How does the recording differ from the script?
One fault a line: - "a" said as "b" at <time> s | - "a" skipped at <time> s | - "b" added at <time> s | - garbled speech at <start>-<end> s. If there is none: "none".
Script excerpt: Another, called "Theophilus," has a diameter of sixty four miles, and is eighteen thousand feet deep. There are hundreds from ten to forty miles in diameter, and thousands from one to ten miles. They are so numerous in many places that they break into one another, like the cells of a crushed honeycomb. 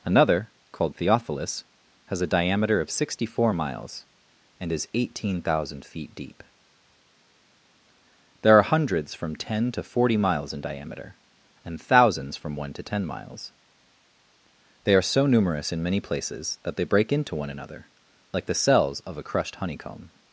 none